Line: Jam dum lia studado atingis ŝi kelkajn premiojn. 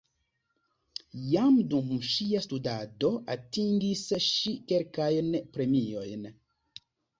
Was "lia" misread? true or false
true